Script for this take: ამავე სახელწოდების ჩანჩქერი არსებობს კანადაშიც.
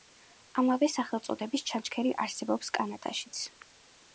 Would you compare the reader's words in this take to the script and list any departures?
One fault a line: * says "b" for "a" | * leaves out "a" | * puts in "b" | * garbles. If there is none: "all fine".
all fine